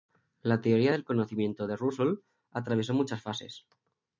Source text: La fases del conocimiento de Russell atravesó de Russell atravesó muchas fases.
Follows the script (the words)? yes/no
no